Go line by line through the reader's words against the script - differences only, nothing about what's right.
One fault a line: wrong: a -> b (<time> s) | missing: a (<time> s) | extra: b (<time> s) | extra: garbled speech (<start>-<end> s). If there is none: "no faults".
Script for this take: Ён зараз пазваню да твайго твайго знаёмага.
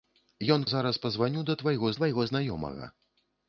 no faults